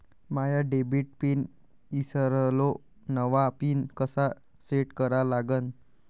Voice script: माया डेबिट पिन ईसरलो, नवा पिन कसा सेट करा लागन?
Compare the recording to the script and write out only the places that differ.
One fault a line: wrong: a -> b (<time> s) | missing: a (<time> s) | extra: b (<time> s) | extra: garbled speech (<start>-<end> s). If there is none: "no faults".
no faults